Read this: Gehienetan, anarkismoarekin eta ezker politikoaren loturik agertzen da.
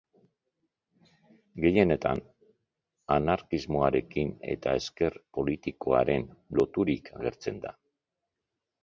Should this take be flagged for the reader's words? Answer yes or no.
no